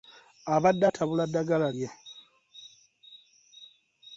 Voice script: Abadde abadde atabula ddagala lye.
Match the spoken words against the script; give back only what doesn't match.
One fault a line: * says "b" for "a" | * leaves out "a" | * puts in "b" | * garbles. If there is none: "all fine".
* leaves out "abadde"